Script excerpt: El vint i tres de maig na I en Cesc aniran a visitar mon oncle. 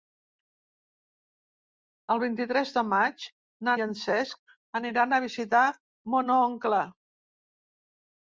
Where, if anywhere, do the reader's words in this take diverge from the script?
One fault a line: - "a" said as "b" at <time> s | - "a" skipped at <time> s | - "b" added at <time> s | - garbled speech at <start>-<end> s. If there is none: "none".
none